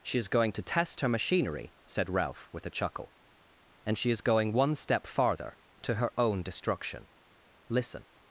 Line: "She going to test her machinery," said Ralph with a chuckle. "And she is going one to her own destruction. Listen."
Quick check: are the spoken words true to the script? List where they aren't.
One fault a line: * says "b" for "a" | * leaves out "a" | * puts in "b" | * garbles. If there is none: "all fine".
* puts in "is"
* puts in "step farther"